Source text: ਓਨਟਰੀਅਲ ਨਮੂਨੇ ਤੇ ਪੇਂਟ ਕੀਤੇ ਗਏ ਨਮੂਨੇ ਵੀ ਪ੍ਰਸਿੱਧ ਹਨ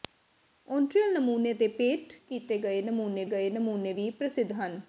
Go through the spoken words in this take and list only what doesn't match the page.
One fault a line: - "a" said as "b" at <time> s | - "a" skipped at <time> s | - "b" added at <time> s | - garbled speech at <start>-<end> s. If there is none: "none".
- "ਗਏ ਨਮੂਨੇ" added at 3.3 s